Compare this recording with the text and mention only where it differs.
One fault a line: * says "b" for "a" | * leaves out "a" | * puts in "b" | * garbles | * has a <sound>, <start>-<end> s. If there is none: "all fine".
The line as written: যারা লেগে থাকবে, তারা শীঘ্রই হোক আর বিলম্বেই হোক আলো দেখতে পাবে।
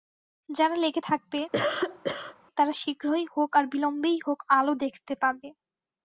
* has a cough, 1.5-2.4 s